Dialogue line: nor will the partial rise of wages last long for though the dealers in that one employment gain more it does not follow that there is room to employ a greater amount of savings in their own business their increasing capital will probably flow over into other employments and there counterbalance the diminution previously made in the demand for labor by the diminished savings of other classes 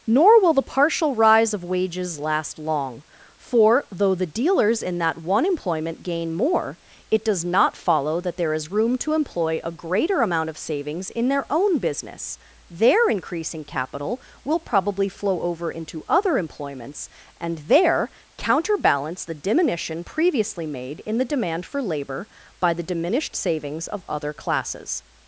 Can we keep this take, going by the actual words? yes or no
yes